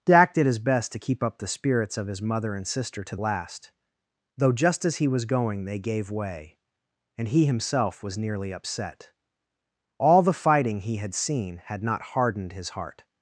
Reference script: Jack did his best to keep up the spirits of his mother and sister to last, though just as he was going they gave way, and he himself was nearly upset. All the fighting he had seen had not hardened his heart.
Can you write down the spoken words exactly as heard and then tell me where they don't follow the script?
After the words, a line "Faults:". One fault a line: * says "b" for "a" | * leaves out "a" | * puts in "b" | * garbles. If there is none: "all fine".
Jack did his best to keep up the spirits of his mother and sister to last, though just as he was going they gave way, and he himself was nearly upset. All the fighting he had seen had not hardened his heart.
Faults:
all fine